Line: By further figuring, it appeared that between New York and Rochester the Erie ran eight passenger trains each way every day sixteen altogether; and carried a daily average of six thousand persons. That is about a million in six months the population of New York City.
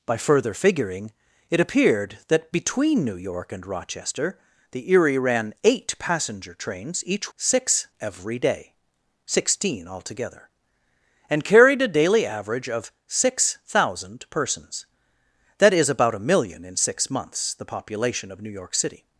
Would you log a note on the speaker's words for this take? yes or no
yes